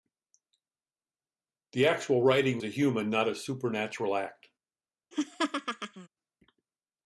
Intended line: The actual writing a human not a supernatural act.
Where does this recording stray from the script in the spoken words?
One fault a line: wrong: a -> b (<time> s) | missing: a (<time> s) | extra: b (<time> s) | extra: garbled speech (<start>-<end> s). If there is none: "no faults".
no faults